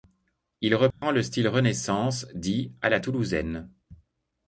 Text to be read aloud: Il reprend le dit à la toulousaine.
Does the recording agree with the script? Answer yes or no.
no